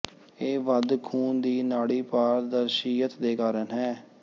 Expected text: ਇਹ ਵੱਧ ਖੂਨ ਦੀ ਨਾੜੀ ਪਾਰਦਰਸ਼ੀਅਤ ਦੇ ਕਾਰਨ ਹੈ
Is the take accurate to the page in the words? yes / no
yes